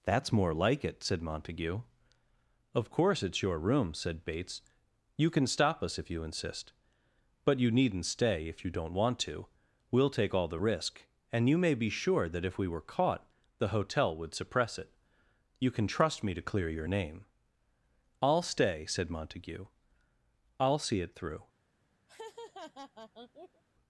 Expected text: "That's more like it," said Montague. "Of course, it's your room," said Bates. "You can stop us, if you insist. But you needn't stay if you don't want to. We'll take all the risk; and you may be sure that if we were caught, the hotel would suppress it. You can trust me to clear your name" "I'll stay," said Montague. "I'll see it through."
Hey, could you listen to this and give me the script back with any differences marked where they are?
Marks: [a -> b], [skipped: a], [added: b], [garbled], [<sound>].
"That's more like it," said Montague. "Of course, it's your room," said Bates. "You can stop us, if you insist. But you needn't stay if you don't want to. We'll take all the risk; and you may be sure that if we were caught, the hotel would suppress it. You can trust me to clear your name" "I'll stay," said Montague. "I'll see it through." [laugh]